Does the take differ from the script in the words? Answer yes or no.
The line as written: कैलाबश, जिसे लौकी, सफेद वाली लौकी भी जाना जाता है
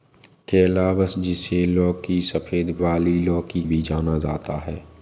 no